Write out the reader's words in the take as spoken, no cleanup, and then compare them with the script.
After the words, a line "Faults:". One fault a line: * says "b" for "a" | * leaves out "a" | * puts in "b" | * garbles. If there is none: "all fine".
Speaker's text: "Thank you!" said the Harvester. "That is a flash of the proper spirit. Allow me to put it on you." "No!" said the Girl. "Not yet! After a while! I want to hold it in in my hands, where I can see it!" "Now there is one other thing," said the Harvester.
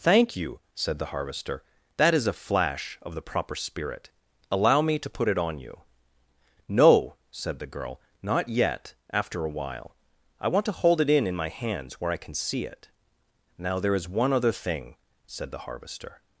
"Thank you!" said the Harvester. "That is a flash of the proper spirit. Allow me to put it on you." "No!" said the Girl. "Not yet! After a while! I want to hold it in in my hands, where I can see it!" "Now there is one other thing," said the Harvester.
Faults:
all fine